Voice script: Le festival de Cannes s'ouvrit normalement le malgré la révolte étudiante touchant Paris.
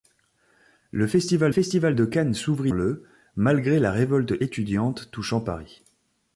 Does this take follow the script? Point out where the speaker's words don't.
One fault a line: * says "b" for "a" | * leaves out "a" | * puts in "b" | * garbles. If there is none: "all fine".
* puts in "festival"
* leaves out "normalement"